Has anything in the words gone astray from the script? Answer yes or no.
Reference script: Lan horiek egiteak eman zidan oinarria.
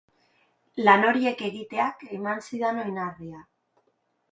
no